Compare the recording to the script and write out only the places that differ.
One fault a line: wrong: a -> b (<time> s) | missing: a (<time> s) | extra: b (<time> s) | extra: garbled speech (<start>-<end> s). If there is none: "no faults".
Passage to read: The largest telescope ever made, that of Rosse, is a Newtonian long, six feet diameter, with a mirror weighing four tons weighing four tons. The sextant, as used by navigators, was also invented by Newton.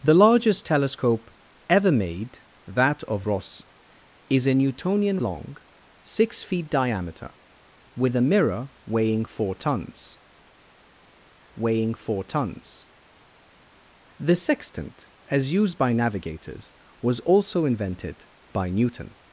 no faults